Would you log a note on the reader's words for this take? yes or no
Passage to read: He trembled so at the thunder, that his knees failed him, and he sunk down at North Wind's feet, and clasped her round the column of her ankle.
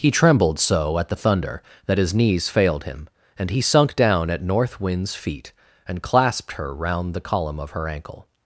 no